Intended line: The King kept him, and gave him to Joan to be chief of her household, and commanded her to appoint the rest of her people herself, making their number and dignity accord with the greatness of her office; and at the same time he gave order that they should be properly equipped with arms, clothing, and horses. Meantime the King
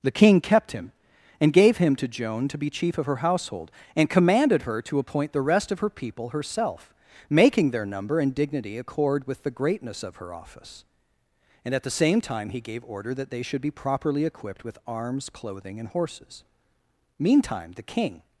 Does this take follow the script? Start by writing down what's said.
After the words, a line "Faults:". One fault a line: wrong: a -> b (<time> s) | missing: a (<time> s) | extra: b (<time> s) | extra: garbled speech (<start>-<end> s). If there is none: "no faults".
The King kept him, and gave him to Joan to be chief of her household, and commanded her to appoint the rest of her people herself, making their number and dignity accord with the greatness of her office; and at the same time he gave order that they should be properly equipped with arms, clothing, and horses. Meantime the King
Faults:
no faults